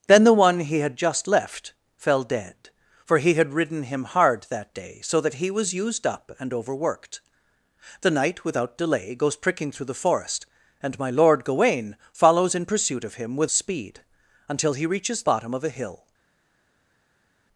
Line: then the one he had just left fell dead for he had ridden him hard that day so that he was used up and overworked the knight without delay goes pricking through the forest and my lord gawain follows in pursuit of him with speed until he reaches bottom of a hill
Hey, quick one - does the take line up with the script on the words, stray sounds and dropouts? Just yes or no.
yes